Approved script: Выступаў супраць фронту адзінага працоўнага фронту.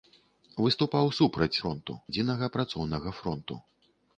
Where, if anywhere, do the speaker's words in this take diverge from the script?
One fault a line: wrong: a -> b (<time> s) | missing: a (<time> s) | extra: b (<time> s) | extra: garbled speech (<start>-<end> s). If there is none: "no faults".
no faults